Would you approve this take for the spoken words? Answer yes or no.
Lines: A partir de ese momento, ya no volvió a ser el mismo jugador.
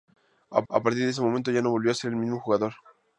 no